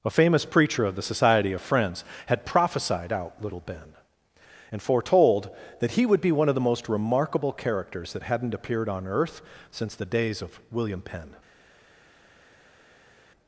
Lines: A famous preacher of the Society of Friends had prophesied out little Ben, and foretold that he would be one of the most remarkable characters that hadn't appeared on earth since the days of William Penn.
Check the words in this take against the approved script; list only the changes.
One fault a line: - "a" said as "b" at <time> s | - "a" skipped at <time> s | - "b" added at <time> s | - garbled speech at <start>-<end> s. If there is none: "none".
none